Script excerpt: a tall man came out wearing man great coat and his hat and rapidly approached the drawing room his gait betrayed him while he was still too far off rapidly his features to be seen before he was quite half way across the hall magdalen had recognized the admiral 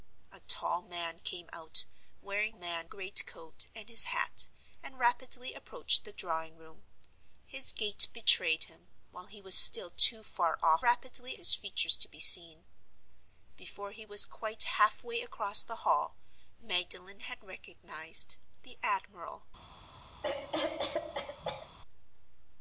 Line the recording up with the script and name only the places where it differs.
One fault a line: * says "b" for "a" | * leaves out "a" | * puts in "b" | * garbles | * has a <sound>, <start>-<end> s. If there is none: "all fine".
* has a cough, 20.2-21.7 s